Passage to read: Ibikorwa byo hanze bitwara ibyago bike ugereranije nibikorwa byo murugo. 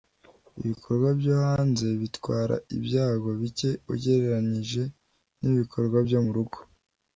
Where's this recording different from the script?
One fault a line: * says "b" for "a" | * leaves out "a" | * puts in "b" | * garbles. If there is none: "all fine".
all fine